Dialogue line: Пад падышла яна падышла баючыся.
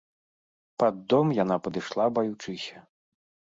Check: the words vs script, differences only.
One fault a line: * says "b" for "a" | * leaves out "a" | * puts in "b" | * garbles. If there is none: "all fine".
* says "дом" for "падышла"